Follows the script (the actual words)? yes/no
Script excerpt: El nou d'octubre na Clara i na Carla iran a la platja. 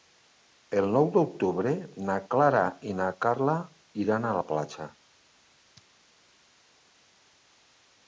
yes